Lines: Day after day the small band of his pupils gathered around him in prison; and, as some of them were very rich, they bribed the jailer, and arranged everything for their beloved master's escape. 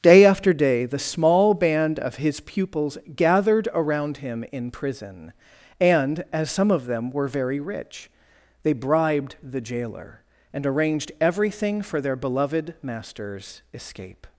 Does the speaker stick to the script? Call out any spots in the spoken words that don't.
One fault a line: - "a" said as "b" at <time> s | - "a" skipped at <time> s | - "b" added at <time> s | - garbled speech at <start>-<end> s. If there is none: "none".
none